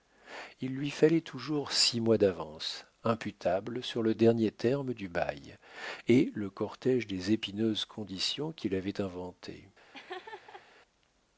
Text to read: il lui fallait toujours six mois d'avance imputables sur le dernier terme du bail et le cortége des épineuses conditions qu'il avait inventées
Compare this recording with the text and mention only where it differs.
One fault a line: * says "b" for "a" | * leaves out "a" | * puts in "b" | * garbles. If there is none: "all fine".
all fine